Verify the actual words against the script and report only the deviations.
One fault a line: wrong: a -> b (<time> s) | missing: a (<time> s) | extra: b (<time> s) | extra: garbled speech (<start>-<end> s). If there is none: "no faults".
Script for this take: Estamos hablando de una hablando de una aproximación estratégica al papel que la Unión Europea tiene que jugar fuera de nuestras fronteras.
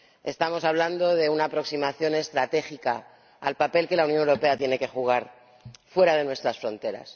missing: hablando de una (1.5 s)